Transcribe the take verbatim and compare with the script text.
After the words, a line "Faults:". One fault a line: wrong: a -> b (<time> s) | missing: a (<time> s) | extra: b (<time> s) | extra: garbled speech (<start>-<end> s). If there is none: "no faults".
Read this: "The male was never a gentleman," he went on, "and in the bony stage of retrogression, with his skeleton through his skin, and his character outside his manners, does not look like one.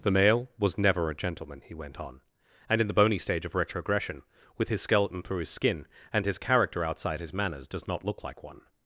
"The male was never a gentleman," he went on, "and in the bony stage of retrogression, with his skeleton through his skin, and his character outside his manners, does not look like one.
Faults:
no faults